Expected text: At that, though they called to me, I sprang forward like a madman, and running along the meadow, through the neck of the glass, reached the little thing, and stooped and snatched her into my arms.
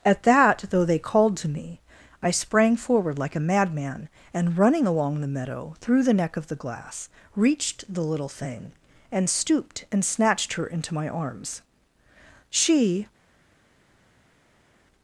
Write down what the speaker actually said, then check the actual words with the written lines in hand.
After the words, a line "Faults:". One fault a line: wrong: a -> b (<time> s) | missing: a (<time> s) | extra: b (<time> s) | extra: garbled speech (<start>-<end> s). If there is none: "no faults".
At that, though they called to me, I sprang forward like a madman, and running along the meadow, through the neck of the glass, reached the little thing, and stooped and snatched her into my arms. She
Faults:
extra: She (12.5 s)